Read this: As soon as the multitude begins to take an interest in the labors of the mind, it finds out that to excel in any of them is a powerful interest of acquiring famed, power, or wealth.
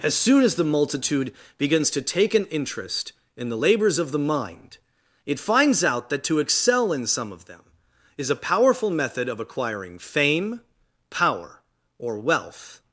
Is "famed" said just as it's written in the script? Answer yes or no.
no